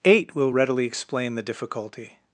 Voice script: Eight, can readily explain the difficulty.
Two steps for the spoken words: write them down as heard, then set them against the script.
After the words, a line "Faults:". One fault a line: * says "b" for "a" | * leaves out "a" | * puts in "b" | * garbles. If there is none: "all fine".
Eight, will readily explain the difficulty.
Faults:
* says "will" for "can"